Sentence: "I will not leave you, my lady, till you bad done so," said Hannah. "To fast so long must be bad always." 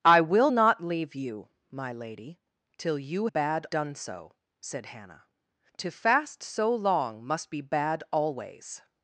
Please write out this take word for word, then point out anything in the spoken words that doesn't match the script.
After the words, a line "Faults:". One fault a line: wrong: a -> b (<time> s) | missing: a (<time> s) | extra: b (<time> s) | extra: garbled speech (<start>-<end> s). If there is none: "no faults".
"I will not leave you, my lady, till you bad done so," said Hannah. "To fast so long must be bad always."
Faults:
no faults